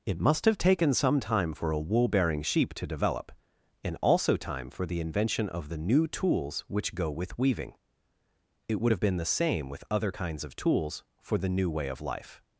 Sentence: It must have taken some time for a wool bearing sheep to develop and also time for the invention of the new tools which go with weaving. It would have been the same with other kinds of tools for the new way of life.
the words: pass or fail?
pass